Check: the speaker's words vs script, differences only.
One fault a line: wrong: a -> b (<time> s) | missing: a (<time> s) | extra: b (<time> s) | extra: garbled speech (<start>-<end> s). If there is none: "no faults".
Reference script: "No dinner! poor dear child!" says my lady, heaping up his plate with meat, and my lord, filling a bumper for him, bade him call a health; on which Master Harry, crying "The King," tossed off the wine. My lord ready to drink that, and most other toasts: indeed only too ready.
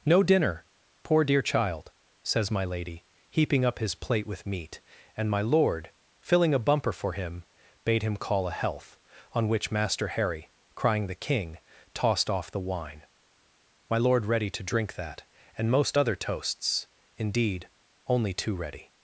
no faults